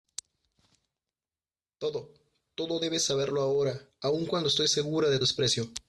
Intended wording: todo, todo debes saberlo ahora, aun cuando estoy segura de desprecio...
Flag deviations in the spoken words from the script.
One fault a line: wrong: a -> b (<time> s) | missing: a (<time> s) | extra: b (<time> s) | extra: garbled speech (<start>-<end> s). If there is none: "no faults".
no faults